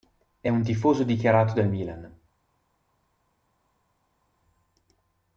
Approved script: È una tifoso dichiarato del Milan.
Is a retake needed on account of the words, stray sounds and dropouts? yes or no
yes